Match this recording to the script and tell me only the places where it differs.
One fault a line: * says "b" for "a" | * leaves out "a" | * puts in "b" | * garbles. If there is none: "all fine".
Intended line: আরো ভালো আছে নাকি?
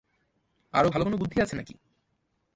* puts in "কোনো বুদ্ধি"